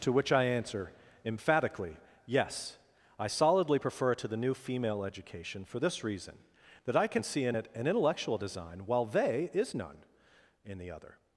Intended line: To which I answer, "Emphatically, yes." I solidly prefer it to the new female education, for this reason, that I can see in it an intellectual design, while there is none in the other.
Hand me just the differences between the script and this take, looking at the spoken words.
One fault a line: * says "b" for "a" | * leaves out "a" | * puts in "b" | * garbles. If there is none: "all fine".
* says "they" for "there"